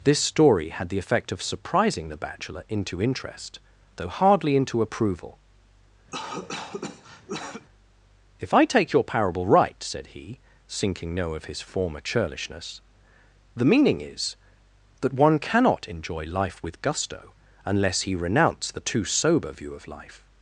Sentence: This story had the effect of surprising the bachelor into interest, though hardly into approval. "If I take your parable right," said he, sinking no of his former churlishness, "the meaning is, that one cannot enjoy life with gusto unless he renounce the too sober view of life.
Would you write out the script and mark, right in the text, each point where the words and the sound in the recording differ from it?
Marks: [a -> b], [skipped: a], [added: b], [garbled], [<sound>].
This story had the effect of surprising the bachelor into interest, though hardly into approval. [cough] "If I take your parable right," said he, sinking no of his former churlishness, "the meaning is, that one cannot enjoy life with gusto unless he renounce the too sober view of life.